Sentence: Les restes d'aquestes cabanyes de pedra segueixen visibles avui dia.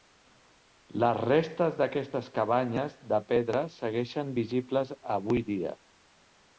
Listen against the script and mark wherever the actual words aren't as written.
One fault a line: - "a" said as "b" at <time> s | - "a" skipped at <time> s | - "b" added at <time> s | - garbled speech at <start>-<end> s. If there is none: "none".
none